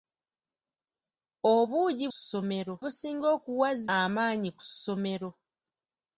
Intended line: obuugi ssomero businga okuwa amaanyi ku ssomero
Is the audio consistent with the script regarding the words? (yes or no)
yes